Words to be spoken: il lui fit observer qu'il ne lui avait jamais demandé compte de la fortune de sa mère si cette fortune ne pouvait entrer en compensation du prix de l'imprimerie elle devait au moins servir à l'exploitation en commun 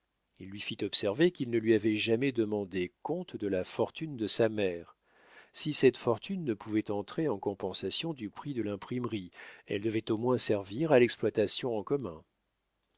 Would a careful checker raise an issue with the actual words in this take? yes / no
no